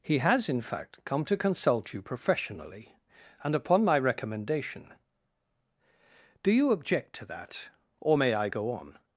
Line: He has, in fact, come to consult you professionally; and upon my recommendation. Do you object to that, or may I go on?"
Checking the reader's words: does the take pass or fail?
pass